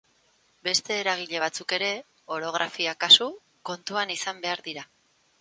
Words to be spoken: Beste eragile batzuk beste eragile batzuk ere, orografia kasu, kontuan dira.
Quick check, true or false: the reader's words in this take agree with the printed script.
false